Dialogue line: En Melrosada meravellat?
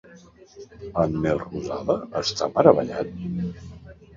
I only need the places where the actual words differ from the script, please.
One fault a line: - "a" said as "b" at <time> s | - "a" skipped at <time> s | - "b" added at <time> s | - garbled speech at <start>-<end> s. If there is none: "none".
- "està" added at 2.2 s